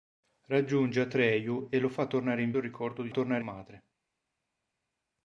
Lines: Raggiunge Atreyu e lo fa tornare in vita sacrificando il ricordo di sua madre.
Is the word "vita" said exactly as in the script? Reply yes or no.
no